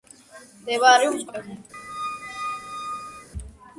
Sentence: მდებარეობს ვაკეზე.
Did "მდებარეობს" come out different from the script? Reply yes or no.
no